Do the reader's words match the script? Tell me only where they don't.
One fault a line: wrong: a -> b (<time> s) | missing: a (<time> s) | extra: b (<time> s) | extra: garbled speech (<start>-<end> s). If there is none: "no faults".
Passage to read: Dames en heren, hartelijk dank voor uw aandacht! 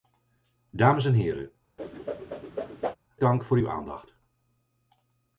missing: hartelijk (1.5 s)